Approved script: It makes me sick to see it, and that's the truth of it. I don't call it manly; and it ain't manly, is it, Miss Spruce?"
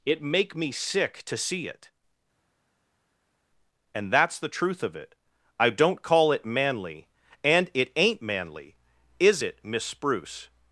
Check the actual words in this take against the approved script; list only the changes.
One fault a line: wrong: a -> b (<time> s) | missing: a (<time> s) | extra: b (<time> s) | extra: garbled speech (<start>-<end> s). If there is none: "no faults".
wrong: makes -> make (0.2 s)